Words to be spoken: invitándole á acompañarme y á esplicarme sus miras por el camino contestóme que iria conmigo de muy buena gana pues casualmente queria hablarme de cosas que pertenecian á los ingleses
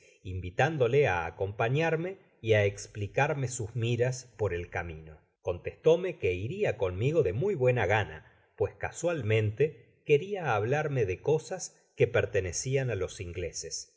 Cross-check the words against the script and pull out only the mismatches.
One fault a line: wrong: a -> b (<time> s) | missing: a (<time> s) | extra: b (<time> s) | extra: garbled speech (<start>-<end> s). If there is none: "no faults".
no faults